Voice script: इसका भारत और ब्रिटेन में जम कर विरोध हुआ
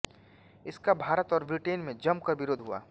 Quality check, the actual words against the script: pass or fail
pass